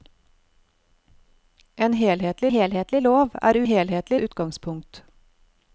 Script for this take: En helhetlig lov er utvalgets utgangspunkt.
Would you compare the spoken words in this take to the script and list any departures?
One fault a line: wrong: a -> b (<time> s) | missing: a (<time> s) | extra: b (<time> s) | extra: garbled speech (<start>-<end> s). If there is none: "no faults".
extra: helhetlig (2.5 s)
wrong: utvalgets -> helhetlig (3.6 s)